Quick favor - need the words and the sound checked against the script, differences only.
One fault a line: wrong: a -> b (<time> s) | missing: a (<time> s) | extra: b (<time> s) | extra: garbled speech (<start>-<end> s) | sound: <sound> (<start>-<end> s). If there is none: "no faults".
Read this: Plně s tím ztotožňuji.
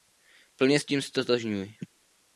no faults